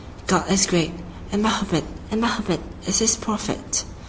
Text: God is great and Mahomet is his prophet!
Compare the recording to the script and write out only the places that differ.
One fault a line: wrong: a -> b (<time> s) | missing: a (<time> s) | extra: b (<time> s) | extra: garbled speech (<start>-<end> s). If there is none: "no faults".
extra: and Mahomet (2.1 s)